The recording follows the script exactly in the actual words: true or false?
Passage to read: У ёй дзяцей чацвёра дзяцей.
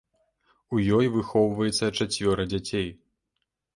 false